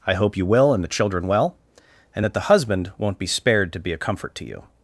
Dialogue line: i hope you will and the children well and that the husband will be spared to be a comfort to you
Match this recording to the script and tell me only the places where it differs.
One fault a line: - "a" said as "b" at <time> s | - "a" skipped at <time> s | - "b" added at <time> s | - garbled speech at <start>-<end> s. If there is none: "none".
- "will" said as "won't" at 3.0 s